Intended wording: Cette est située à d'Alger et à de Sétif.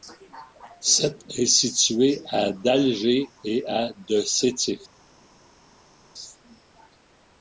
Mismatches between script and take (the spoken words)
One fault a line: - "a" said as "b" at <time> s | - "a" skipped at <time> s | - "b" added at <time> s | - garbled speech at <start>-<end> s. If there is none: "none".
none